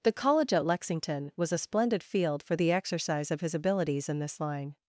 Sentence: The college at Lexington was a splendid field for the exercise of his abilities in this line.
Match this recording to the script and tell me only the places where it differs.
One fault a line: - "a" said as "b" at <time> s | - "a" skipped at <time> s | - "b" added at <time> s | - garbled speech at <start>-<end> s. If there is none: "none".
none